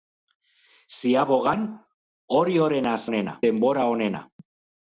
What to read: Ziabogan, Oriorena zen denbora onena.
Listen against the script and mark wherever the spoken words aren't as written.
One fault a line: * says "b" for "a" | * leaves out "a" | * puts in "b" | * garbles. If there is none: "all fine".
* says "onena" for "zen"